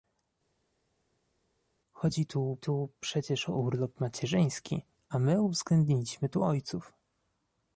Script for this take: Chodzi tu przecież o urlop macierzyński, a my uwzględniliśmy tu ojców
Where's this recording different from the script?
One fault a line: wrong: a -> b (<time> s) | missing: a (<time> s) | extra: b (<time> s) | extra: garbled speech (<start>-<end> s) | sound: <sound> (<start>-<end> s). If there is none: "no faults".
extra: tu (2.6 s)